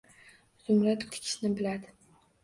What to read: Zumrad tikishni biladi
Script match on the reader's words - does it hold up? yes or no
yes